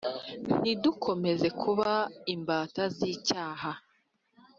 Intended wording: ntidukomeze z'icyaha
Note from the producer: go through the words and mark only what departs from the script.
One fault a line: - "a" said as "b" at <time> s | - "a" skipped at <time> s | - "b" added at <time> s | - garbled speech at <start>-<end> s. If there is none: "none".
- "kuba imbata" added at 1.6 s